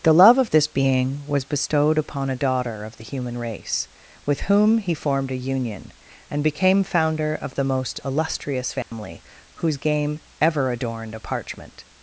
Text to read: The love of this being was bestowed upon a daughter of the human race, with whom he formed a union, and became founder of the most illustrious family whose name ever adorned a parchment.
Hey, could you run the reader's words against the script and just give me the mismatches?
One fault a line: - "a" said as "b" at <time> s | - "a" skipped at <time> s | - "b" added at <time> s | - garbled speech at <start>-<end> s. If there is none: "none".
- "name" said as "game" at 9.8 s